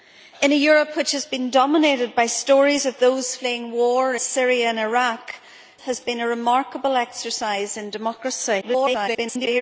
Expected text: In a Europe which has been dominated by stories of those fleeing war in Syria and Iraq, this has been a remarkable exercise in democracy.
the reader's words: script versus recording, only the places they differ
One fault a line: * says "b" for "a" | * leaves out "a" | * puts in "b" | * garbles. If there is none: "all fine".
* leaves out "in"
* leaves out "this"
* garbles